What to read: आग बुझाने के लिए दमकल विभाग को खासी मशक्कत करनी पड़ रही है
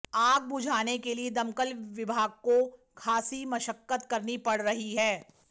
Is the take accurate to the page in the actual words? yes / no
yes